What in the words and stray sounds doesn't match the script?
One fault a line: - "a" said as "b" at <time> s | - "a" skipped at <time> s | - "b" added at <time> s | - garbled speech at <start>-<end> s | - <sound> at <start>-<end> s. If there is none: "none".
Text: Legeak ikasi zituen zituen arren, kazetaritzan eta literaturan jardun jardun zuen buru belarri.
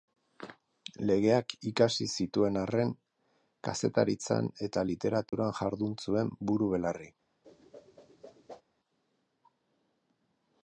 - "zituen" skipped at 2.6 s
- dropout at 5.3-5.3 s
- "jardun" skipped at 6.0 s
- whoosh at 7.4-8.6 s